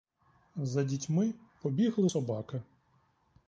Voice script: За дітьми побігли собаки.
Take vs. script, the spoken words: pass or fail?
pass